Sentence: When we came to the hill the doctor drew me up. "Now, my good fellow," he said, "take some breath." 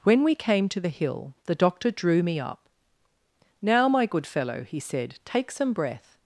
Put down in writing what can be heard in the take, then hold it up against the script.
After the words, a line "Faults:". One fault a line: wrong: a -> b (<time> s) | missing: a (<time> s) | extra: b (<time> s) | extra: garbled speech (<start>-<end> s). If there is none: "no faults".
When we came to the hill the doctor drew me up. "Now, my good fellow," he said, "take some breath."
Faults:
no faults